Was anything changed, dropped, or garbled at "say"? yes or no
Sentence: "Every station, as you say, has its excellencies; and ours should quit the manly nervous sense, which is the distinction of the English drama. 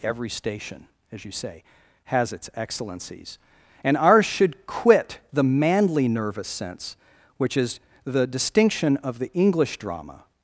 no